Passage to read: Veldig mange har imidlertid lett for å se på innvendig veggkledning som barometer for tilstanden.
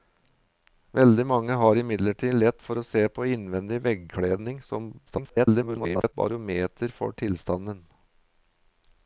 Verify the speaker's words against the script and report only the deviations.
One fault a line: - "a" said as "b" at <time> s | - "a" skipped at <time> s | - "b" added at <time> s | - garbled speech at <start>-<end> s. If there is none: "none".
- garbled speech at 5.1-6.1 s